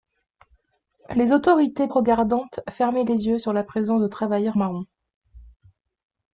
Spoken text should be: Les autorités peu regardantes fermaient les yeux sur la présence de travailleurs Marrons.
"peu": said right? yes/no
no